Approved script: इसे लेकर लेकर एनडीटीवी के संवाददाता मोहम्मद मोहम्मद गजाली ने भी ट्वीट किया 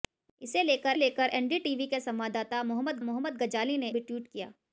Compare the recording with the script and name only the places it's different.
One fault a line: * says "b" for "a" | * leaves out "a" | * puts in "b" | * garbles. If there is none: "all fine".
all fine